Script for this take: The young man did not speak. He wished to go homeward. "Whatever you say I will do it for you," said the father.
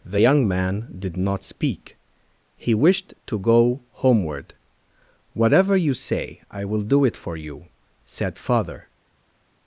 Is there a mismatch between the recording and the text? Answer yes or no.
yes